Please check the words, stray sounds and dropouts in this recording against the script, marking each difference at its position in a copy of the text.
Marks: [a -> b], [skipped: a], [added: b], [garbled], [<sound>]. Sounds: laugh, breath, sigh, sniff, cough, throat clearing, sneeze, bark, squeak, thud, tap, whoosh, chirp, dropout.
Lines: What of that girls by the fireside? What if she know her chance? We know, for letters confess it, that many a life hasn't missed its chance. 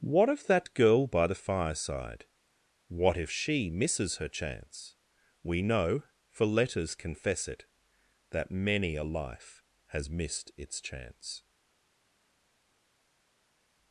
What of that [girls -> girl] by the fireside? What if she [know -> misses] her chance? We know, for letters confess it, that many a life [hasn't -> has] missed its chance.